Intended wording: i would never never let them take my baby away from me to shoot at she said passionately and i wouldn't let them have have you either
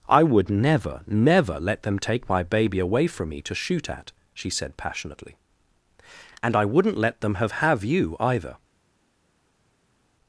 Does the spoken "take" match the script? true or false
true